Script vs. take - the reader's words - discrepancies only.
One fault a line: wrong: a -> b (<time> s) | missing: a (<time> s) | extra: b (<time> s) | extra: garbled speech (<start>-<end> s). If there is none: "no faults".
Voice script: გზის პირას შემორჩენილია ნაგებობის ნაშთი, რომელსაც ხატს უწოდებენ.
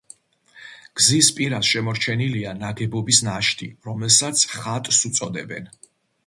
no faults